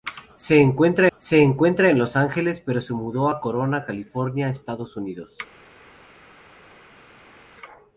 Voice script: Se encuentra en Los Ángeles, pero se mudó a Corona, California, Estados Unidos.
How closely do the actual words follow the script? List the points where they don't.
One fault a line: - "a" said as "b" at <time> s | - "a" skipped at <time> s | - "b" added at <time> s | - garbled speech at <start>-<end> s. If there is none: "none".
- "se encuentra" added at 1.2 s